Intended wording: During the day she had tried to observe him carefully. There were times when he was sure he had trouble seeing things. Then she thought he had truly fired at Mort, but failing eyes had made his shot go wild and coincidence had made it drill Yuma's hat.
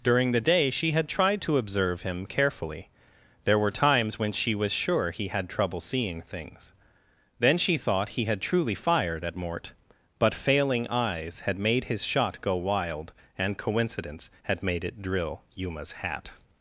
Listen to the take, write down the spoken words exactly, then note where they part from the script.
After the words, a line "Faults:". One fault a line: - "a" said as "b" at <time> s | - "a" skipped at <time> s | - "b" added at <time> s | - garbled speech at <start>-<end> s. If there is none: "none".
During the day she had tried to observe him carefully. There were times when she was sure he had trouble seeing things. Then she thought he had truly fired at Mort, but failing eyes had made his shot go wild and coincidence had made it drill Yuma's hat.
Faults:
- "he" said as "she" at 4.3 s